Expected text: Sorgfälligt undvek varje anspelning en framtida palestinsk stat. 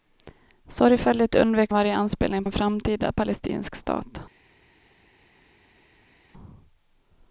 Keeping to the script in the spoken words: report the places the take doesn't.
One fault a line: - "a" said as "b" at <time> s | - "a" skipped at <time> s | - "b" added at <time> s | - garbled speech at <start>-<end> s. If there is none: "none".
none